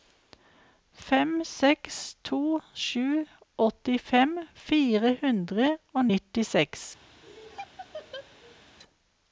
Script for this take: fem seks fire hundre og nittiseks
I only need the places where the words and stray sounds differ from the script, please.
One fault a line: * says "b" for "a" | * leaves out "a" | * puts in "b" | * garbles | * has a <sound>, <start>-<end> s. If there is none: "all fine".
* puts in "to sju åttifem"
* has a laugh, 7.2-8.6 s